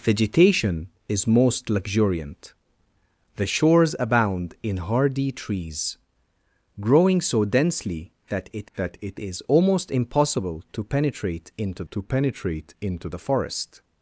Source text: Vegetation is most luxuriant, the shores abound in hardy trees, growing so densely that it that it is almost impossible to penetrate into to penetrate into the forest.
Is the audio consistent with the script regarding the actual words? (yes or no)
yes